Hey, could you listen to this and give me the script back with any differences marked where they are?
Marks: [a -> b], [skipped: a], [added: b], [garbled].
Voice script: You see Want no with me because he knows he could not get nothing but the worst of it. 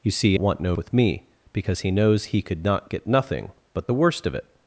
You see Want no with me because he knows he could not get nothing but the worst of it.